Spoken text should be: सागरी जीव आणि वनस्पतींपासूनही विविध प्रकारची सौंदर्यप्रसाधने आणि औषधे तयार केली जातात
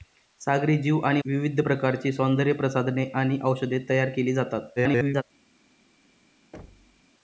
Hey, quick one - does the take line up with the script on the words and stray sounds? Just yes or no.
no